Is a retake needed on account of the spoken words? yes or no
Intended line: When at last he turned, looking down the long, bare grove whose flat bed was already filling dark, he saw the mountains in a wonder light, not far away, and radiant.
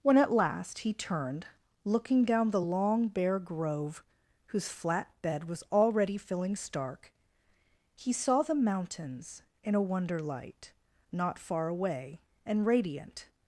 yes